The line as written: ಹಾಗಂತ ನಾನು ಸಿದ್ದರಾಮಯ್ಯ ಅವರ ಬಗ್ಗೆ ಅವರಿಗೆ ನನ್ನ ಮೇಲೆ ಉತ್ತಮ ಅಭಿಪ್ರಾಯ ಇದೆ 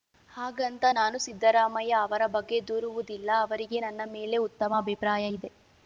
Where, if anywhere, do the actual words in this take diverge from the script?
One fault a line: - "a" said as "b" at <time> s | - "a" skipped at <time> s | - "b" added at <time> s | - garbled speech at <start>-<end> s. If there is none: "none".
- "ದೂರುವುದಿಲ್ಲ" added at 2.7 s